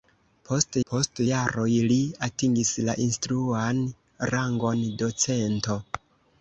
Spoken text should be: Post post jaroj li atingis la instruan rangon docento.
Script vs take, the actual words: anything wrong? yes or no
no